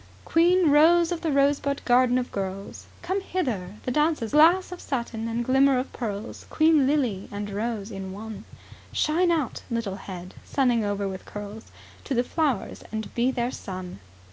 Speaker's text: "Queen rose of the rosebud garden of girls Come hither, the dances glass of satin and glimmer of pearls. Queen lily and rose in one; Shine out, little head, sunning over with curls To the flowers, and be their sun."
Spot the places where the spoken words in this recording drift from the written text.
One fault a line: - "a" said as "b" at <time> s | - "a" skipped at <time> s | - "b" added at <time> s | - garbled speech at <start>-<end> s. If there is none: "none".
none